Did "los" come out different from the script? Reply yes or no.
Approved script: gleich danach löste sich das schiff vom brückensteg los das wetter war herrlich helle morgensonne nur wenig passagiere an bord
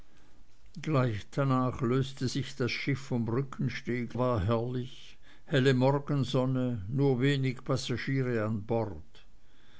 yes